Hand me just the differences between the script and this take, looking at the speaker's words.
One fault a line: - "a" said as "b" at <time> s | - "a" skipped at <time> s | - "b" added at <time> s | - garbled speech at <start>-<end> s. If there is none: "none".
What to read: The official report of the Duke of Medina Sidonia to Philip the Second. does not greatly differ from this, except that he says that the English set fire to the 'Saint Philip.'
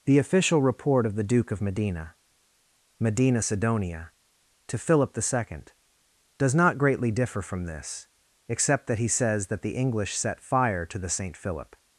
- "Medina" added at 3.0 s